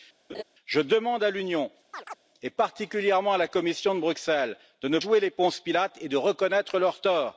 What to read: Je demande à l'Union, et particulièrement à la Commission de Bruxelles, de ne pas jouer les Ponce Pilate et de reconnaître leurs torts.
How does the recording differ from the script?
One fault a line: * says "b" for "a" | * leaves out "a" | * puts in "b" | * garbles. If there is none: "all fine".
* leaves out "pas"